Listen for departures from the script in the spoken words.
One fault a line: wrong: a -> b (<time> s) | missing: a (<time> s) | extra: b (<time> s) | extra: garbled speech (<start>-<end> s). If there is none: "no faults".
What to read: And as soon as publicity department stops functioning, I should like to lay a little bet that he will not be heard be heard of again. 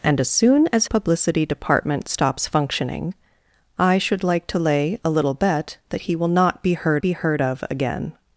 no faults